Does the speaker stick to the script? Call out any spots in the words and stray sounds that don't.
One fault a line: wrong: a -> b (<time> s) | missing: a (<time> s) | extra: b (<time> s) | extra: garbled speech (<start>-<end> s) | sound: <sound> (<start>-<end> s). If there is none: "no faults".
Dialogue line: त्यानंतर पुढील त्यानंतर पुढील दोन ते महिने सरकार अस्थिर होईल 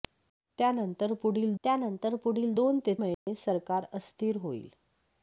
sound: dropout (3.1-3.3 s)